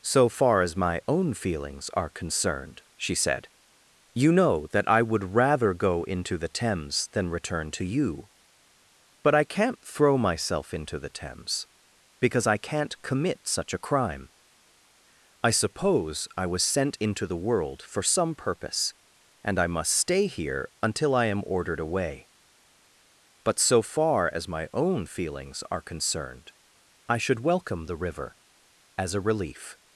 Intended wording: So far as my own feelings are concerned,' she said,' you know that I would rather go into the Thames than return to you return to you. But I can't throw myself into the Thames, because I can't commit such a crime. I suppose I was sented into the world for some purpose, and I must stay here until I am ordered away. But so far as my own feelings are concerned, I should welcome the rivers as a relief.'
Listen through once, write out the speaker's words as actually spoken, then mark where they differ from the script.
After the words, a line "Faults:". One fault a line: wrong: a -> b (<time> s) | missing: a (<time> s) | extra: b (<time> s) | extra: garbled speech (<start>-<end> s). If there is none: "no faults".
So far as my own feelings are concerned,' she said,' you know that I would rather go into the Thames than return to you. But I can't throw myself into the Thames, because I can't commit such a crime. I suppose I was sent into the world for some purpose, and I must stay here until I am ordered away. But so far as my own feelings are concerned, I should welcome the river as a relief.'
Faults:
missing: return to you (8.3 s)
wrong: sented -> sent (16.6 s)
wrong: rivers -> river (28.0 s)